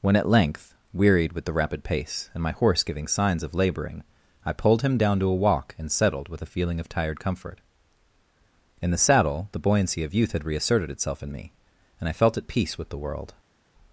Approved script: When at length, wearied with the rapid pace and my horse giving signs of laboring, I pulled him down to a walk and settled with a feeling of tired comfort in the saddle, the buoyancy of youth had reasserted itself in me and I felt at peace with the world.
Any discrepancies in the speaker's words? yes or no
no